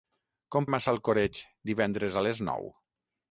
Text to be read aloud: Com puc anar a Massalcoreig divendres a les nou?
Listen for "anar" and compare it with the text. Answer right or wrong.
wrong